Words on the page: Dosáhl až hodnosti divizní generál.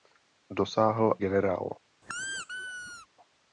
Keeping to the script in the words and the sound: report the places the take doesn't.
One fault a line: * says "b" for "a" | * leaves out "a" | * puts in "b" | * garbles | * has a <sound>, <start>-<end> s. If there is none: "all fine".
* leaves out "až hodnosti divizní"
* has a squeak, 2.0-3.1 s